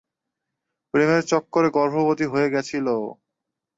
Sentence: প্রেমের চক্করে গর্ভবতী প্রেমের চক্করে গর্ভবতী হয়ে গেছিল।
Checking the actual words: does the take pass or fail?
fail